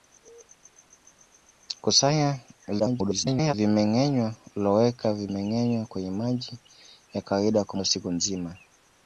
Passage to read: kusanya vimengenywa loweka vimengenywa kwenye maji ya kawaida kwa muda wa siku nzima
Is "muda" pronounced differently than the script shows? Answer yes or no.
yes